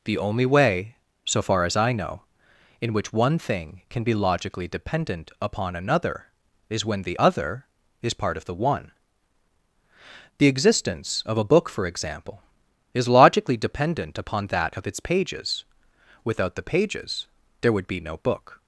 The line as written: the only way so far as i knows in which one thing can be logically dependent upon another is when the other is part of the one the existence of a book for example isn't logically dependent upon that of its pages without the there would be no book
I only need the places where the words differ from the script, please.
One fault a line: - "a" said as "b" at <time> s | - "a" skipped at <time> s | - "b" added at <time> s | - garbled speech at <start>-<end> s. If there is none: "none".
- "knows" said as "know" at 1.9 s
- "isn't" said as "is" at 12.9 s
- "pages" added at 16.6 s